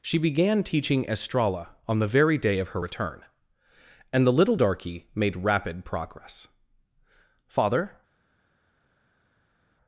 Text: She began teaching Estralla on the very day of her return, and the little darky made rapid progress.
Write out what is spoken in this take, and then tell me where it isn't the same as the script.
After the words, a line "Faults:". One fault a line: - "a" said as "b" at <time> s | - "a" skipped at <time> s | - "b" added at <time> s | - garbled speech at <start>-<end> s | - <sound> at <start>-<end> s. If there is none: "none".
She began teaching Estralla on the very day of her return, and the little darky made rapid progress. "Father
Faults:
- "Father" added at 7.5 s